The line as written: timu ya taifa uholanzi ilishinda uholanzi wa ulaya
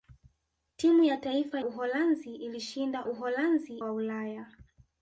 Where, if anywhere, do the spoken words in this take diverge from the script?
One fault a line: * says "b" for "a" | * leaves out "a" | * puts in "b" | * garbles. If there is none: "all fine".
all fine